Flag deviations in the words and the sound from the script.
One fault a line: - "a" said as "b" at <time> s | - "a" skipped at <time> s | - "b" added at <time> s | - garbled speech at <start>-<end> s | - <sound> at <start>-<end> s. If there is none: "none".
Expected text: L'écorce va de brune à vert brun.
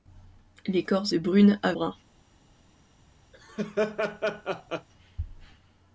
- "va" skipped at 1.1 s
- "vert" skipped at 1.7 s
- laugh at 3.3-4.9 s